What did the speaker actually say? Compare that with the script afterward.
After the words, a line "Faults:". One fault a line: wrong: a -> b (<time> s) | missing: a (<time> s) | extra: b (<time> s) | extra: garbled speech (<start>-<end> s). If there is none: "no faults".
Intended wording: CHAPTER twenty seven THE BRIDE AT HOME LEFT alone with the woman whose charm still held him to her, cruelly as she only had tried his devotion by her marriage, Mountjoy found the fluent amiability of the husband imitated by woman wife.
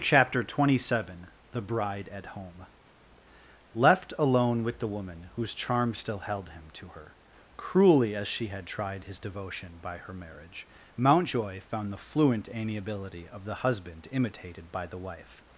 CHAPTER twenty seven THE BRIDE AT HOME LEFT alone with the woman whose charm still held him to her, cruelly as she had tried his devotion by her marriage, Mountjoy found the fluent amiability of the husband imitated by the wife.
Faults:
missing: only (8.5 s)
wrong: woman -> the (14.9 s)